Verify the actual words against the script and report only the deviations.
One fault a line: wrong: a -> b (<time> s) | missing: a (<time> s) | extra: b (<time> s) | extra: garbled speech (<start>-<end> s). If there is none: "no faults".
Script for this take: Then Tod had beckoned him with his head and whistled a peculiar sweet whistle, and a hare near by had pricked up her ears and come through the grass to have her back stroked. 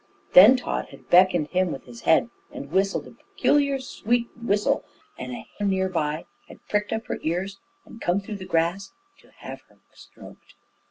missing: hare (5.5 s)
missing: back (9.8 s)